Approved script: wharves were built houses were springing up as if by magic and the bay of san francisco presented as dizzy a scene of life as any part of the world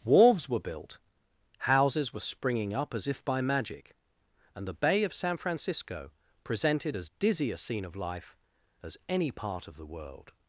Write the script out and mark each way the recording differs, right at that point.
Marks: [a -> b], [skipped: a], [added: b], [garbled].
wharves were built houses were springing up as if by magic and the bay of san francisco presented as dizzy a scene of life as any part of the world